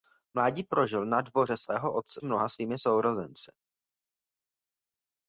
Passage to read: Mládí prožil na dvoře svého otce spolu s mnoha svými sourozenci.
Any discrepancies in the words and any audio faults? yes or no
yes